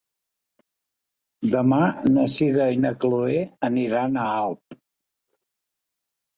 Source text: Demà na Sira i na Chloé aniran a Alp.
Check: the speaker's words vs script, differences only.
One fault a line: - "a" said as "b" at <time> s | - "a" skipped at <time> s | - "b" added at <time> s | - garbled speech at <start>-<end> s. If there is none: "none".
none